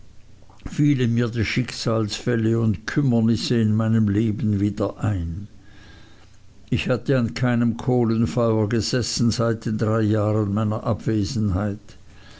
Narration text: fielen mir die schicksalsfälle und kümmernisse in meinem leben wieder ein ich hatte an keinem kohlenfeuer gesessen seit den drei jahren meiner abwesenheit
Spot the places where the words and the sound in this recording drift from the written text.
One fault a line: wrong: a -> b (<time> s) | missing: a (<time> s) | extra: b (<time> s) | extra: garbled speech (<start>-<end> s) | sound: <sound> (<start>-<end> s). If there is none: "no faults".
no faults